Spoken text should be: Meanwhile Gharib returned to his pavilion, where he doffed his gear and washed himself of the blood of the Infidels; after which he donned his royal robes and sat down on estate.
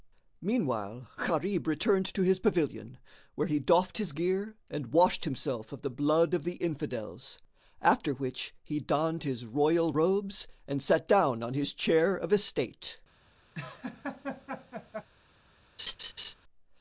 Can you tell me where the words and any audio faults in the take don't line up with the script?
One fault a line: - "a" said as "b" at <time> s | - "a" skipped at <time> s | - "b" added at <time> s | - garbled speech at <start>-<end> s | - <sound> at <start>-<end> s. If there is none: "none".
- "his chair of" added at 11.5 s
- laugh at 13.5-15.1 s
- laugh at 15.8-16.3 s